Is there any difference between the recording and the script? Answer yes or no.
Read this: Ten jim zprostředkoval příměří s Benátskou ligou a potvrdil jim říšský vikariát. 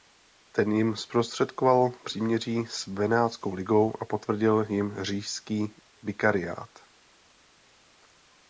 no